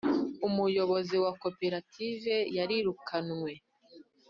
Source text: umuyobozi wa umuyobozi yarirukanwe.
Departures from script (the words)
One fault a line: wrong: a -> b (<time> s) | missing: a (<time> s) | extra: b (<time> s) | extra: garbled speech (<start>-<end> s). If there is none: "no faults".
wrong: umuyobozi -> koperative (1.4 s)